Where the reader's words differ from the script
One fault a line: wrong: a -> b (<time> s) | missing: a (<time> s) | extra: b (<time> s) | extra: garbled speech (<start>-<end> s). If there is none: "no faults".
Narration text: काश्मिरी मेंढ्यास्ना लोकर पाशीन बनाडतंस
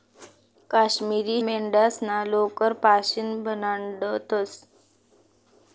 no faults